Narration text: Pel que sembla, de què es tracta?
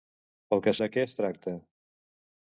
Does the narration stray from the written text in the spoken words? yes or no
yes